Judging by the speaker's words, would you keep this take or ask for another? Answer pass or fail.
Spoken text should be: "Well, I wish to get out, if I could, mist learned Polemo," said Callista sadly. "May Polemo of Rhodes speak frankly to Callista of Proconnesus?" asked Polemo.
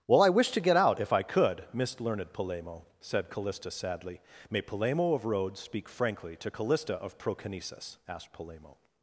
pass